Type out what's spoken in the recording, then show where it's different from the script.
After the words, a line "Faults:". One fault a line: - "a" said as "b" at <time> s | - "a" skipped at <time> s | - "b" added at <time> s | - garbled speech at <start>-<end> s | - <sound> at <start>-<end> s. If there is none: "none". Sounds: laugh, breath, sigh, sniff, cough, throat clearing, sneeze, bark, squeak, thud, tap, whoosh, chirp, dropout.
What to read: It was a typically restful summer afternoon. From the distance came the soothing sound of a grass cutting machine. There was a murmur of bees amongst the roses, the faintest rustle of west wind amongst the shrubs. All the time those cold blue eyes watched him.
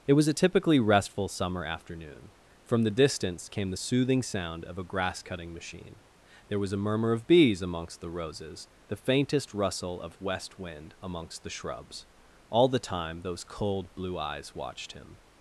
It was a typically restful summer afternoon. From the distance came the soothing sound of a grass cutting machine. There was a murmur of bees amongst the roses, the faintest rustle of west wind amongst the shrubs. All the time those cold blue eyes watched him.
Faults:
none